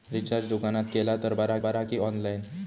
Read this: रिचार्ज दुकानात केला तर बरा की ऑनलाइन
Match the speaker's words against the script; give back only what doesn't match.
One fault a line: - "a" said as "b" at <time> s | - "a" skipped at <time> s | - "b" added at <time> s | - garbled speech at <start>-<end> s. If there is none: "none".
- "बरा" added at 1.6 s